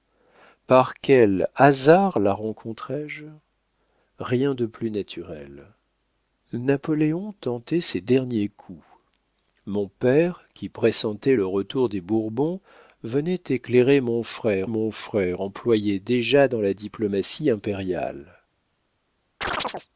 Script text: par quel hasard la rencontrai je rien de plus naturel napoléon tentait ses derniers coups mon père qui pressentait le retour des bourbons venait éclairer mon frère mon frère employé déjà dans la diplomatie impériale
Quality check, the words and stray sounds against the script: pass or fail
fail